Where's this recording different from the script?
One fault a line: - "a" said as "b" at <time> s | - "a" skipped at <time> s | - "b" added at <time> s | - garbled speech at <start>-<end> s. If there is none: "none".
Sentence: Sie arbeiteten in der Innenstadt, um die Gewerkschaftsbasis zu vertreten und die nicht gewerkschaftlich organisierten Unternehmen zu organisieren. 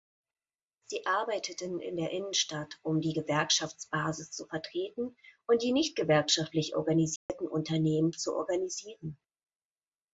none